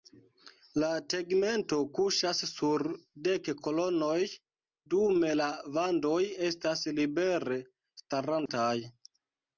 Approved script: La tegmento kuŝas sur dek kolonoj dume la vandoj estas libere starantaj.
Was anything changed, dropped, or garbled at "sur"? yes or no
no